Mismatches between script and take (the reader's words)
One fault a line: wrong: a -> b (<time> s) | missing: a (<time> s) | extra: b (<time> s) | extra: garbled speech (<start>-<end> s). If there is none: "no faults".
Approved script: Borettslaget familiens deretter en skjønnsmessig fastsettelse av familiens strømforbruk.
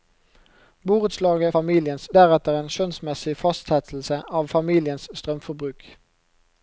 no faults